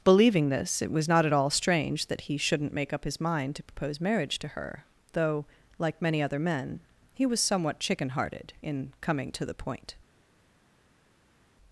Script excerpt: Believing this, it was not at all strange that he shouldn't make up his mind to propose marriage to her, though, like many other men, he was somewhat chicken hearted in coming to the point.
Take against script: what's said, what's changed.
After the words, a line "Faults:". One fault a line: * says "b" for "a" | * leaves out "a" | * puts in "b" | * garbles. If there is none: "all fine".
Believing this, it was not at all strange that he shouldn't make up his mind to propose marriage to her, though, like many other men, he was somewhat chicken hearted in coming to the point.
Faults:
all fine